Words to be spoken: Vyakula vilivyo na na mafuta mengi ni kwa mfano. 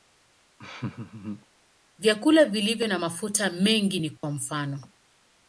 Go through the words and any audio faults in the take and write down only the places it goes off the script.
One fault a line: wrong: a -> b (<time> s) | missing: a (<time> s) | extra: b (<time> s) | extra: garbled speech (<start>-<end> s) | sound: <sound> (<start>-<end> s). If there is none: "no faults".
sound: laugh (0.6-1.5 s)
missing: na (3.0 s)
sound: dropout (4.2-4.2 s)